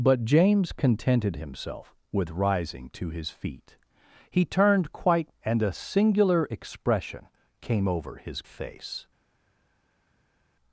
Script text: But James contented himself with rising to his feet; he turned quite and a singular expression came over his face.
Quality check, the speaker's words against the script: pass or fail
pass